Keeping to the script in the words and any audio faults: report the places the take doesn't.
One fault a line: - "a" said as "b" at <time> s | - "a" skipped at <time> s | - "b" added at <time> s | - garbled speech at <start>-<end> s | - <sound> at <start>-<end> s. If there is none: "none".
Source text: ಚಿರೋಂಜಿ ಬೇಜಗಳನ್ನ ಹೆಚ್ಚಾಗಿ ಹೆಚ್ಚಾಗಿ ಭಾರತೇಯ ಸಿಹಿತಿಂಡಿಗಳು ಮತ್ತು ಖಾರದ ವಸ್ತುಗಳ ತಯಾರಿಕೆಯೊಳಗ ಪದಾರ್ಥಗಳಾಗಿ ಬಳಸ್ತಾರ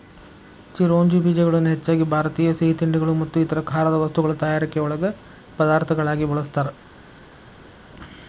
- "ಹೆಚ್ಚಾಗಿ" skipped at 2.1 s
- "ಇತರ" added at 3.4 s